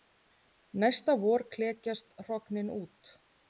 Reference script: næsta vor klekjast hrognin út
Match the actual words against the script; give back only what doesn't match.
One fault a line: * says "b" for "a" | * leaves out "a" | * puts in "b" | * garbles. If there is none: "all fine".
all fine